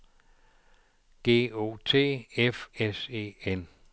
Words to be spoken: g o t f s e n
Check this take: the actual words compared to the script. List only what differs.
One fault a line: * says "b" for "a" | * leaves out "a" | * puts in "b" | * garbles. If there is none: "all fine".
all fine